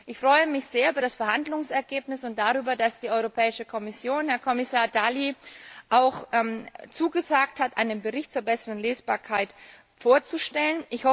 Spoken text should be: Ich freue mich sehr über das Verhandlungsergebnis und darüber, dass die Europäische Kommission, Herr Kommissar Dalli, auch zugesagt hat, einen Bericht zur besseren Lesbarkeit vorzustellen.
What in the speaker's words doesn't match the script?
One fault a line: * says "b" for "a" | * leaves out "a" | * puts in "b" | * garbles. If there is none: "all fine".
all fine